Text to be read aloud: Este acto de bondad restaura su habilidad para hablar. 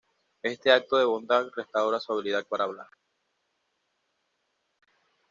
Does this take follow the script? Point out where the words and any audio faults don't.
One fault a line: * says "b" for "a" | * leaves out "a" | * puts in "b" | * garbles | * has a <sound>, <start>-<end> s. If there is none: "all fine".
all fine